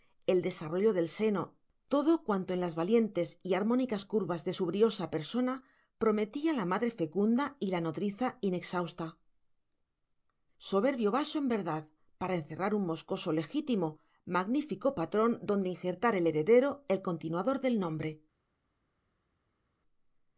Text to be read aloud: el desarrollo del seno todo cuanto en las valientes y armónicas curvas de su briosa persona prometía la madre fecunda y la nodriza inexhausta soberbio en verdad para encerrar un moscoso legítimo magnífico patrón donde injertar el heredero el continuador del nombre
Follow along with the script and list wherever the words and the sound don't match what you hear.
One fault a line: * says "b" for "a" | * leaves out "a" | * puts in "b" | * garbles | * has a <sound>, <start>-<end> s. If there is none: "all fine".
* puts in "vaso"